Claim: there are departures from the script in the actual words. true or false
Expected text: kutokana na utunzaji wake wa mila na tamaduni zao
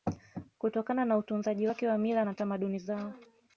false